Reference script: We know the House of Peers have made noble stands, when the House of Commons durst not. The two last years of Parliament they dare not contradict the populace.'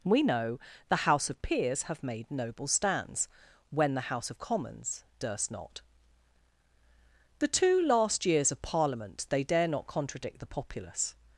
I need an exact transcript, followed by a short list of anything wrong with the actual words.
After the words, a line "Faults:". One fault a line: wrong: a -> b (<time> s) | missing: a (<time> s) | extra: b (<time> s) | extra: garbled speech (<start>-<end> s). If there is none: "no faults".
We know the House of Peers have made noble stands, when the House of Commons durst not. The two last years of Parliament they dare not contradict the populace.'
Faults:
no faults